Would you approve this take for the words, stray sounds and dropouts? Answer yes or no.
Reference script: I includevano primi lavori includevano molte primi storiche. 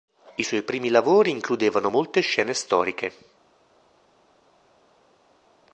no